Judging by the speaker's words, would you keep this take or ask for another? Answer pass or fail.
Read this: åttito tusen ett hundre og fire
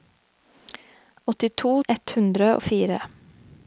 fail